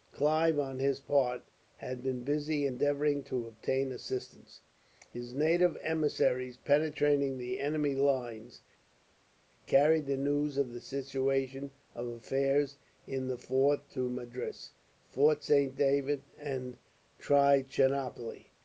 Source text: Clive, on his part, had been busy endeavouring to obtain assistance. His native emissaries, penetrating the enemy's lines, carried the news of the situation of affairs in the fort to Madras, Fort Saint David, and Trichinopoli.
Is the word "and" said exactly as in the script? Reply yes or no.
yes